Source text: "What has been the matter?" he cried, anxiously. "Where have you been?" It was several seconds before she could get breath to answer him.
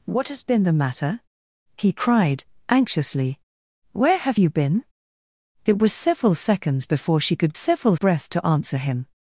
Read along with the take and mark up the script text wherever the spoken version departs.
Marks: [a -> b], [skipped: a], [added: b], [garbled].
"What has been the matter?" he cried, anxiously. "Where have you been?" It was several seconds before she could [get -> several] breath to answer him.